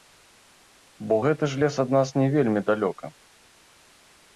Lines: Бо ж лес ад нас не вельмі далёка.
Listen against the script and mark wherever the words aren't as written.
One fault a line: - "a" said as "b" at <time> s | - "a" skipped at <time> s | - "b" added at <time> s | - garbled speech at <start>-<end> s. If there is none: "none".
- "гэты" added at 1.3 s